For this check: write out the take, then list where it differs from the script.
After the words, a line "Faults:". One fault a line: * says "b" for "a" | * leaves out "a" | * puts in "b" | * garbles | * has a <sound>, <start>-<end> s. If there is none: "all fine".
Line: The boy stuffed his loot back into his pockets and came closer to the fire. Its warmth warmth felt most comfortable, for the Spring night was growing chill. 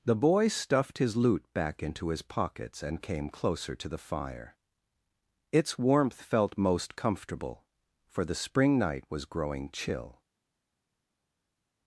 The boy stuffed his loot back into his pockets and came closer to the fire. Its warmth felt most comfortable, for the Spring night was growing chill.
Faults:
* leaves out "warmth"